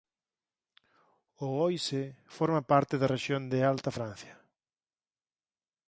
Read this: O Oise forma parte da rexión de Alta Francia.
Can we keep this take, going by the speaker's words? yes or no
yes